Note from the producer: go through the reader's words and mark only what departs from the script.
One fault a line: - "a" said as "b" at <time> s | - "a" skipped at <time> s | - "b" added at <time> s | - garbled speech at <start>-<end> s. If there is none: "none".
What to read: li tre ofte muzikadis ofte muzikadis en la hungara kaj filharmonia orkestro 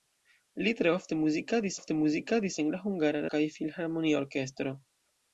none